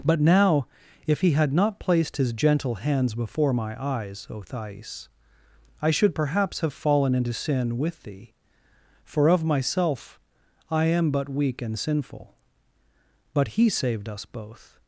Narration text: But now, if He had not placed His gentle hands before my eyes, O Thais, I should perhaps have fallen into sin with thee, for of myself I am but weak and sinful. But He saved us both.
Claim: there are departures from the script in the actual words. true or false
false